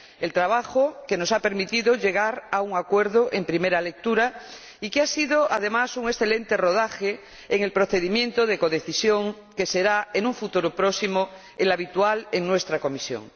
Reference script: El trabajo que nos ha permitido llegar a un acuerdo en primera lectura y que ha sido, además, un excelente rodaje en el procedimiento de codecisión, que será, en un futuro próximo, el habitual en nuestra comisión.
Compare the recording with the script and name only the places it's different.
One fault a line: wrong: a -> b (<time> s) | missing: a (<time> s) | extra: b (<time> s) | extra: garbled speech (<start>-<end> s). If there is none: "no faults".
no faults